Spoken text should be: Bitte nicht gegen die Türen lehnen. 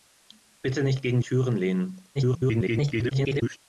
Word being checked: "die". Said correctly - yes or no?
no